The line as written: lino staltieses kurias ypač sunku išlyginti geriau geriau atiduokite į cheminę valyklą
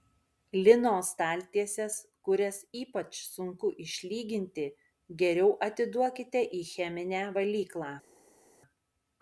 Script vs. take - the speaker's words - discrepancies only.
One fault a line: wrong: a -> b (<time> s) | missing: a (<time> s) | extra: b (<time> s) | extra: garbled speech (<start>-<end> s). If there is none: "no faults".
missing: geriau (5.5 s)